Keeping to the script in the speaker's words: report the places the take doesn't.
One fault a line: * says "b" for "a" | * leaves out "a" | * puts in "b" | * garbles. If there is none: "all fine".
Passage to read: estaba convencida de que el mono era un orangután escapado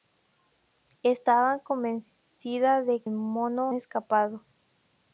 * leaves out "que"
* leaves out "era un orangután"